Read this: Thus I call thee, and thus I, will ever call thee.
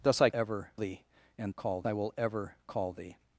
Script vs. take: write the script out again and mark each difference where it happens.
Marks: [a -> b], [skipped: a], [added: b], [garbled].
Thus I [call -> ever] thee, and [thus -> call] I, will ever call thee.